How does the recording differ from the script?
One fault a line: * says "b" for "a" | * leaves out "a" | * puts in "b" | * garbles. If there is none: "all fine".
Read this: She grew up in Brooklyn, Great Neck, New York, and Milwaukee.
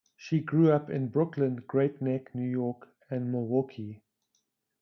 all fine